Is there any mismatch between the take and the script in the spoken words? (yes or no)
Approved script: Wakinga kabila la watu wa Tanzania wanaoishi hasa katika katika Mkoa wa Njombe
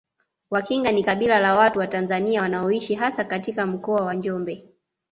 yes